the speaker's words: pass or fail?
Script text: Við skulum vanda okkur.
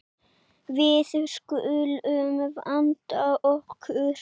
pass